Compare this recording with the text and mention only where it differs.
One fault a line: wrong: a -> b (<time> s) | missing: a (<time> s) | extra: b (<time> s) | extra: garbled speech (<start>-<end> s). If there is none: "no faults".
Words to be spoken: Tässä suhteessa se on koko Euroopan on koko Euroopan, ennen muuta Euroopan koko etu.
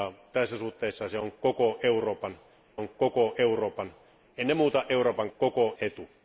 no faults